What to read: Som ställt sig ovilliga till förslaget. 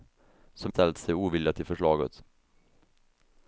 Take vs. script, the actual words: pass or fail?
pass